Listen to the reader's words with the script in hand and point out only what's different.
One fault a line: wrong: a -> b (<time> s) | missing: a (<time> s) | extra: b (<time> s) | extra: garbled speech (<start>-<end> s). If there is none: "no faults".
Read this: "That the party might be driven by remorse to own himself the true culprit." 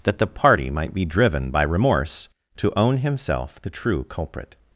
no faults